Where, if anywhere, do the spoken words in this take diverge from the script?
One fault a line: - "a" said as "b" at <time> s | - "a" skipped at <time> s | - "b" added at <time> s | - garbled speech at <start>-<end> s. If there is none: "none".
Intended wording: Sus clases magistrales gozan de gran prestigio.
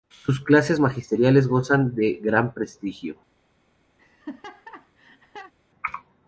none